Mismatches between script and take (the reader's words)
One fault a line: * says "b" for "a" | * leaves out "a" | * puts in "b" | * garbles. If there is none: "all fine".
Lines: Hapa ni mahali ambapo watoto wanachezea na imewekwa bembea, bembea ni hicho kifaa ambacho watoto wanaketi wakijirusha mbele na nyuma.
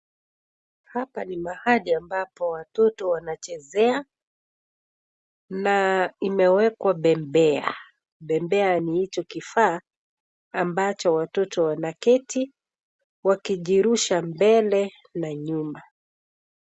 all fine